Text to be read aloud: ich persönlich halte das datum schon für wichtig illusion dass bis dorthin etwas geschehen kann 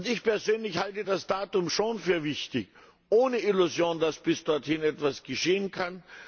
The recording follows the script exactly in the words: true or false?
false